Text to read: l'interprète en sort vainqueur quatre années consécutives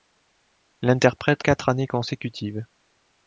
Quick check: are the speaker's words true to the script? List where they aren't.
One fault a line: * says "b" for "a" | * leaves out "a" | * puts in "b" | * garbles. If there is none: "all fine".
* leaves out "en sort vainqueur"